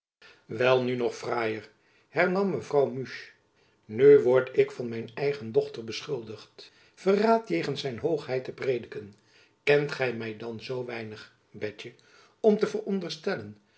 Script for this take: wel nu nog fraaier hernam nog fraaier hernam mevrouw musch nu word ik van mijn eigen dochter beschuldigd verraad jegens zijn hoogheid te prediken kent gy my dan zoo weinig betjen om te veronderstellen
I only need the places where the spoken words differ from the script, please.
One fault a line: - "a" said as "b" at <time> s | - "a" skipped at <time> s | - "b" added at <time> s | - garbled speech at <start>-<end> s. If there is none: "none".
- "nog fraaier hernam" skipped at 2.5 s